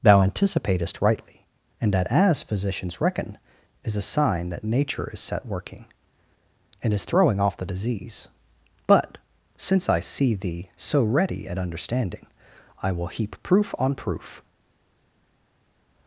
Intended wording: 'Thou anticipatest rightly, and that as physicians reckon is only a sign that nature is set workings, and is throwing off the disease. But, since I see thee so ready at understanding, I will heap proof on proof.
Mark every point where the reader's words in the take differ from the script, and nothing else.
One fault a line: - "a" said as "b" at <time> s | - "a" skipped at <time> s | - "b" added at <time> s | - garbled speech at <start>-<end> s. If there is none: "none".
- "only" skipped at 4.0 s
- "workings" said as "working" at 5.5 s